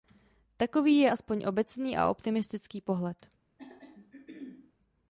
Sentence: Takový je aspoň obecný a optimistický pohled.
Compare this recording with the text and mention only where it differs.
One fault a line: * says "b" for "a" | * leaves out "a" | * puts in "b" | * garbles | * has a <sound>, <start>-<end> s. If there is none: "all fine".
* has a throat clearing, 3.6-4.7 s